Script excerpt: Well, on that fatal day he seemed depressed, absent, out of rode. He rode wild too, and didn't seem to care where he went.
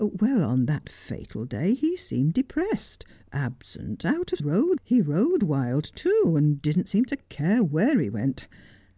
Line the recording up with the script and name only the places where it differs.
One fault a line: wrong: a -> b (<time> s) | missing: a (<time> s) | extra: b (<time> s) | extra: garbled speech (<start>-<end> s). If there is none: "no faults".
no faults